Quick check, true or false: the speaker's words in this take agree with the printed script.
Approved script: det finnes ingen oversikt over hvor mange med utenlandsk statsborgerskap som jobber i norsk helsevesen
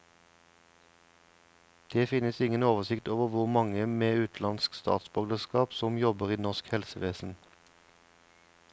true